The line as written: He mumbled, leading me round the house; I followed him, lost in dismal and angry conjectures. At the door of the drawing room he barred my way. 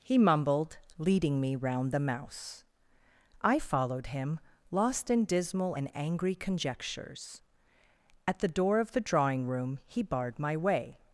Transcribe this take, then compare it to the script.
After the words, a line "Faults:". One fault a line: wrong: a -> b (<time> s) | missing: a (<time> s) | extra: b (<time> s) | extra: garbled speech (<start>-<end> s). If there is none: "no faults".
He mumbled, leading me round the mouse; I followed him, lost in dismal and angry conjectures. At the door of the drawing room he barred my way.
Faults:
wrong: house -> mouse (2.0 s)